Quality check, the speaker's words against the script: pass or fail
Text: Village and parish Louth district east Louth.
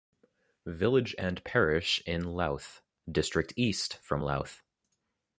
fail